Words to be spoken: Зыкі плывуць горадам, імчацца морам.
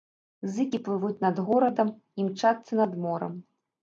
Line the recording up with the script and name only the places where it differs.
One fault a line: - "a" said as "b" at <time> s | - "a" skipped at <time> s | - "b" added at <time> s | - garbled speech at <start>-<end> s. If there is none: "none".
- "над" added at 1.3 s
- "над" added at 2.8 s